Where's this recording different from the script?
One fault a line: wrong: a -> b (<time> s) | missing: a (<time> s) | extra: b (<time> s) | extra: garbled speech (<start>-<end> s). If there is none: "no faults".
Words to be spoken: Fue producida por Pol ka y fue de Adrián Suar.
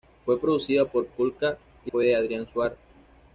no faults